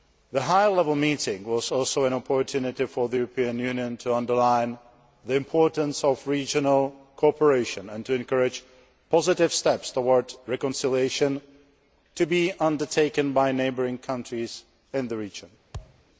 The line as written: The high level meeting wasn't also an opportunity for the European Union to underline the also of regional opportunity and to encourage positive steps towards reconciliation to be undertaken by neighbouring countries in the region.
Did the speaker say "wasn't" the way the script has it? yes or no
no